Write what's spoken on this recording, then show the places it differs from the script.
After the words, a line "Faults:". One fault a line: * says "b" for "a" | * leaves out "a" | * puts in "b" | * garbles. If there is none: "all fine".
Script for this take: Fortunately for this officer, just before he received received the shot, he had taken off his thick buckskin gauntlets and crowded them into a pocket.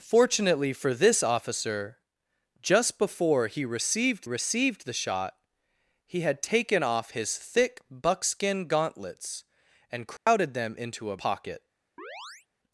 Fortunately for this officer, just before he received received the shot, he had taken off his thick buckskin gauntlets and crowded them into a pocket.
Faults:
all fine